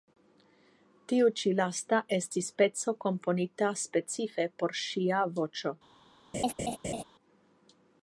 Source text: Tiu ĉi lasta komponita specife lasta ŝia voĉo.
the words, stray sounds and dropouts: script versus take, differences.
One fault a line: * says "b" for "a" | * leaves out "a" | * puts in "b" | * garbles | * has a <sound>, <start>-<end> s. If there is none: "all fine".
* puts in "estis peco"
* says "por" for "lasta"
* has a laugh, 6.3-7.0 s